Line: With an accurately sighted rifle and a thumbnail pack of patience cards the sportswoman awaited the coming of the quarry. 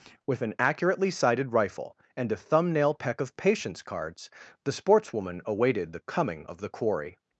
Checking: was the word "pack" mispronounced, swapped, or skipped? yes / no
yes